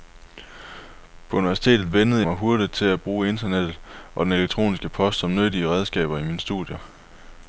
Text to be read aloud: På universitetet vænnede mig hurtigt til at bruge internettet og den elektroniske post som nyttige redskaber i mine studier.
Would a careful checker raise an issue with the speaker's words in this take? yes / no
no